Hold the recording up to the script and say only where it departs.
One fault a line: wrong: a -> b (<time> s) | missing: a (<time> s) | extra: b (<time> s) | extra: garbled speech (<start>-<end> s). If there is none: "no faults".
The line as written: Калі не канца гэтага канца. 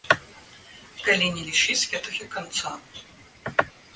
wrong: канца -> лічыць (1.5 s)